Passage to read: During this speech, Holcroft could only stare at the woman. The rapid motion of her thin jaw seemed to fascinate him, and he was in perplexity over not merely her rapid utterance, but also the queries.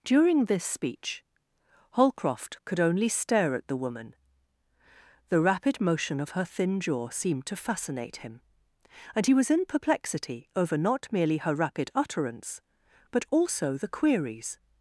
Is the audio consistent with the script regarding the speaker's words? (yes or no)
yes